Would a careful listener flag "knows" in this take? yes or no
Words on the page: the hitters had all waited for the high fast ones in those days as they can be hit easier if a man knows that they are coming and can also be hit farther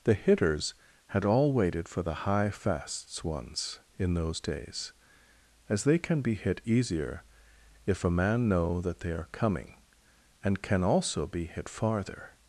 yes